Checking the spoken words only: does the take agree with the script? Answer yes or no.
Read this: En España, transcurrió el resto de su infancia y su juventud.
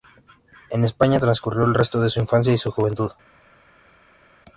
yes